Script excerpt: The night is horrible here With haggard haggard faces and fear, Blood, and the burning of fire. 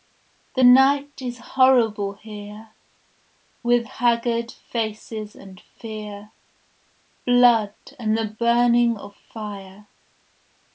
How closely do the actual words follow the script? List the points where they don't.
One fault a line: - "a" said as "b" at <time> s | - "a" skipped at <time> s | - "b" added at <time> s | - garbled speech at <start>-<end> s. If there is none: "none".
- "haggard" skipped at 4.5 s